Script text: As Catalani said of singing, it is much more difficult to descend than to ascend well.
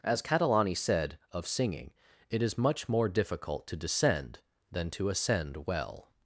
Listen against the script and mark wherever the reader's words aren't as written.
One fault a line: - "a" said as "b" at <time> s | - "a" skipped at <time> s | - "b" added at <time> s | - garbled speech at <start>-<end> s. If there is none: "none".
none